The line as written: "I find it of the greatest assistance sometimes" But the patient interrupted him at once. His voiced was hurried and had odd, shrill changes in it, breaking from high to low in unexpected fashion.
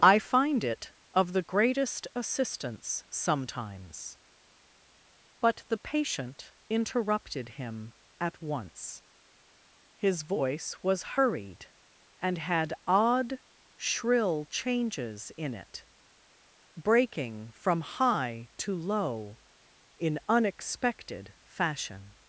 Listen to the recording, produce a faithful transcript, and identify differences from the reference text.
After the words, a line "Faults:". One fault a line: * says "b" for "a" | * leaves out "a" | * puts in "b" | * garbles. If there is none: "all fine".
"I find it of the greatest assistance sometimes" But the patient interrupted him at once. His voice was hurried and had odd, shrill changes in it, breaking from high to low in unexpected fashion.
Faults:
* says "voice" for "voiced"